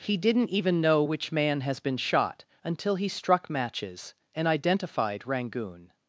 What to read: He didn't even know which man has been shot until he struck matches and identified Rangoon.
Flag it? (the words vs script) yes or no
no